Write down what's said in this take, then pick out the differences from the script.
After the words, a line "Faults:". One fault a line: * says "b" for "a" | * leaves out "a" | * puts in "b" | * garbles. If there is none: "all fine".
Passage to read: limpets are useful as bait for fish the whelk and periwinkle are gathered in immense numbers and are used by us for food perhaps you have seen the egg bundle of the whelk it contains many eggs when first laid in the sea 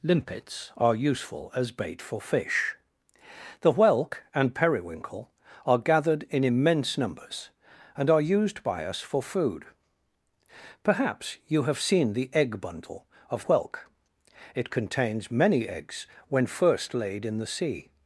limpets are useful as bait for fish the whelk and periwinkle are gathered in immense numbers and are used by us for food perhaps you have seen the egg bundle of whelk it contains many eggs when first laid in the sea
Faults:
* leaves out "the"